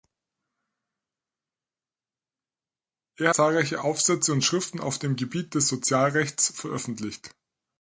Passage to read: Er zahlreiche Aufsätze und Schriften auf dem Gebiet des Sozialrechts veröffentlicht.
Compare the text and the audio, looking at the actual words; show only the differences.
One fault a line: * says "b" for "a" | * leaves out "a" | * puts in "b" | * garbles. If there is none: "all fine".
all fine